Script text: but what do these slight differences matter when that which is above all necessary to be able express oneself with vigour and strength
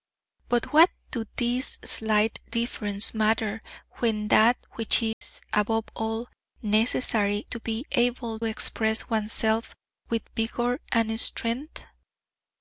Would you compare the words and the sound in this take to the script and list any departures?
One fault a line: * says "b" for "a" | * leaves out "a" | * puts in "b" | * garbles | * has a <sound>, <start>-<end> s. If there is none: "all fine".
* has a dropout, 5.1-5.2 s